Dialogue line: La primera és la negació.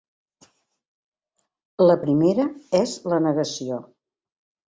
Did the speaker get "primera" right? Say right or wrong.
right